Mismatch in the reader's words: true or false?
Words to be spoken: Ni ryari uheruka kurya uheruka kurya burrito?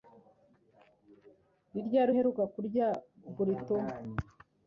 true